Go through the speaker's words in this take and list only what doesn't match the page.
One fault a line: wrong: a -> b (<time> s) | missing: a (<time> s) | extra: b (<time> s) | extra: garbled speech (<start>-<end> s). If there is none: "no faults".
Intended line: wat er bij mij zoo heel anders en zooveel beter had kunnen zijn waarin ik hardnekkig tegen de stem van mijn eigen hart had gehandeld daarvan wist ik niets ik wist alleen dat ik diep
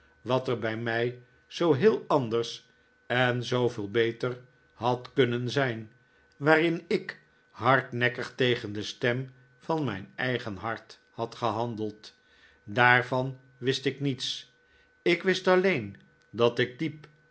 no faults